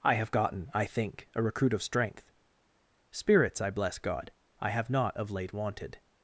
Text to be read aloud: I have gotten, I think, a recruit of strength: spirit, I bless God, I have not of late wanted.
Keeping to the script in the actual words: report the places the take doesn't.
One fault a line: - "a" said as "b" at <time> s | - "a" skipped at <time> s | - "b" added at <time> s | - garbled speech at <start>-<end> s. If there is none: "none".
- "spirit" said as "spirits" at 3.1 s